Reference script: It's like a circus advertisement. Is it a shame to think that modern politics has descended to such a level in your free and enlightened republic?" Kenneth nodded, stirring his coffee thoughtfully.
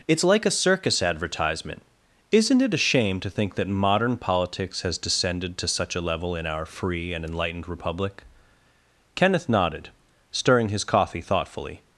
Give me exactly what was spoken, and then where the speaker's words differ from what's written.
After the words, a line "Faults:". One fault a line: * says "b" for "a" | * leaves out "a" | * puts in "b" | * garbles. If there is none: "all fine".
It's like a circus advertisement. Isn't it a shame to think that modern politics has descended to such a level in our free and enlightened republic?" Kenneth nodded, stirring his coffee thoughtfully.
Faults:
* says "Isn't" for "Is"
* says "our" for "your"